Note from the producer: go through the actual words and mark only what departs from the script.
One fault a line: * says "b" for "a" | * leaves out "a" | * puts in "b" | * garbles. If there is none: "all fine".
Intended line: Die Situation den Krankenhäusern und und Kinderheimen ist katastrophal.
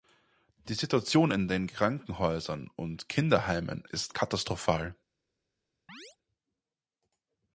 * puts in "in"
* leaves out "und"